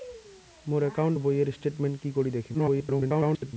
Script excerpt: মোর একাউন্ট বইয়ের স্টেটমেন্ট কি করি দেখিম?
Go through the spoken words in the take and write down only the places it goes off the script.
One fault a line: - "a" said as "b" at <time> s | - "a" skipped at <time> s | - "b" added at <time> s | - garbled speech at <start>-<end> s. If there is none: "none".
- garbled speech at 2.5-3.5 s